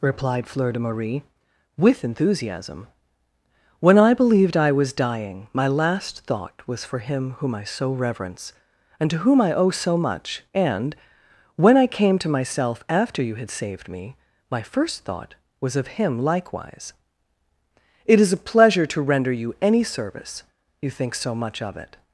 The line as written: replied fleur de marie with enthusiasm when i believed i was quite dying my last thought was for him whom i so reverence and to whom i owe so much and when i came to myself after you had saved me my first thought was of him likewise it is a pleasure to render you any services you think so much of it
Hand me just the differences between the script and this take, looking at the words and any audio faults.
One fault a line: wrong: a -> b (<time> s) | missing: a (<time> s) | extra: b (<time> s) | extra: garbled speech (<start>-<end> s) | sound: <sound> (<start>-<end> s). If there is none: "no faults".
missing: quite (4.9 s)
wrong: services -> service (19.8 s)